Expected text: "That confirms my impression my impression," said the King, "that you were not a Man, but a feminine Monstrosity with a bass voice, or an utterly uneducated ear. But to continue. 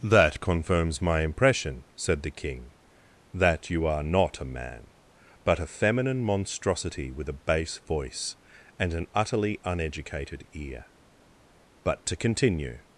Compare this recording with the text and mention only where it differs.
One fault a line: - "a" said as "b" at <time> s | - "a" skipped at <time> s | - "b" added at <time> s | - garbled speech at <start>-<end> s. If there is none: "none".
- "my impression" skipped at 1.8 s
- "were" said as "are" at 3.9 s
- "or" said as "and" at 8.8 s